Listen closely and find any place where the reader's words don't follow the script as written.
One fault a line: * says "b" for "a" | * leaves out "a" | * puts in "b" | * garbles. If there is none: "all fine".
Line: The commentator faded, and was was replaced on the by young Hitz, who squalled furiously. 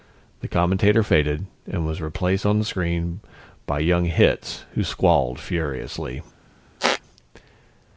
* leaves out "was"
* puts in "screen"